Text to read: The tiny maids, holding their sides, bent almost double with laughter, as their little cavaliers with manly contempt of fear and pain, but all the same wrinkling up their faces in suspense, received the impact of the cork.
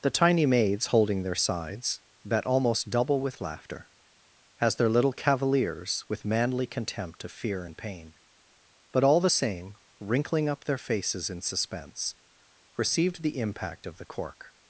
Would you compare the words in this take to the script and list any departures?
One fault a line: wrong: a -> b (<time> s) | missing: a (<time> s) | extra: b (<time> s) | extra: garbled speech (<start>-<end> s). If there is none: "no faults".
wrong: bent -> bet (2.2 s)